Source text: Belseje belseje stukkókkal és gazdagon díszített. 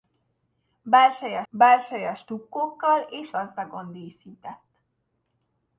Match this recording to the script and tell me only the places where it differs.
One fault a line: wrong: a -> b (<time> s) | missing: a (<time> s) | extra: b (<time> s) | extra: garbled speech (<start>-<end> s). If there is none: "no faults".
no faults